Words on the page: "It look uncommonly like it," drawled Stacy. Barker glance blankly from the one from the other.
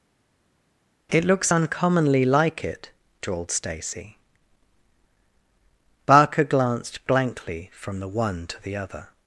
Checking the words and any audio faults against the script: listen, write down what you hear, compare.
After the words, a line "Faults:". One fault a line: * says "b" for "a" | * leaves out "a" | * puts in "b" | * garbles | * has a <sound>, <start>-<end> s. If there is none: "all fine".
"It looks uncommonly like it," drawled Stacy. Barker glanced blankly from the one to the other.
Faults:
* says "looks" for "look"
* says "glanced" for "glance"
* says "to" for "from"